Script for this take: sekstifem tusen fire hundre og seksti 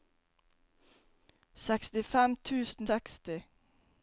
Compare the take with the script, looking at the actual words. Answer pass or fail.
fail